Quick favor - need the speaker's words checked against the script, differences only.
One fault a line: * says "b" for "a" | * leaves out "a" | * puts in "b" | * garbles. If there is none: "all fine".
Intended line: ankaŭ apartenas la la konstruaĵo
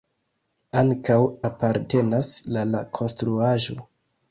all fine